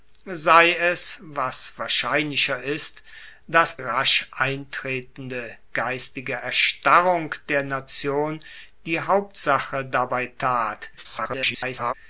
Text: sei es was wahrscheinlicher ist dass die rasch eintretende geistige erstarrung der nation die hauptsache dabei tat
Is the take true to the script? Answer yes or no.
no